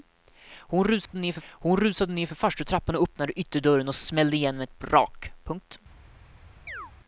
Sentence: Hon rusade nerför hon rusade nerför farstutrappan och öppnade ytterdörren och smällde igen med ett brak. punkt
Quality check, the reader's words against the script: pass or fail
pass